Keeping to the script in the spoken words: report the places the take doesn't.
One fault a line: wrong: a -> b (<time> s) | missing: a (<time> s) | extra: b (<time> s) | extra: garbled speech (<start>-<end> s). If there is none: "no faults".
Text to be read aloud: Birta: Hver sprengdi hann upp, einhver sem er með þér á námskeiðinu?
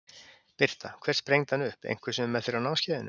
no faults